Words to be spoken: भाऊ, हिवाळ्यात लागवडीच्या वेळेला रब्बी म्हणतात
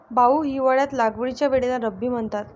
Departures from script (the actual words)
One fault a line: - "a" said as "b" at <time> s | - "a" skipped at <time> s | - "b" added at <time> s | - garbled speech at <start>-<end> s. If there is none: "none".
none